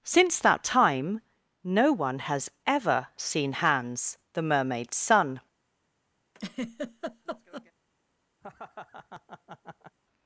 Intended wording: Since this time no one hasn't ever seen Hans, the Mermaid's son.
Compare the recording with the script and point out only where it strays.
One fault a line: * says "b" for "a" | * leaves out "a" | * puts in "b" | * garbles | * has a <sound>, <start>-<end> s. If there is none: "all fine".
* says "that" for "this"
* says "has" for "hasn't"
* has a laugh, 6.3-7.7 s
* has a laugh, 8.4-10.0 s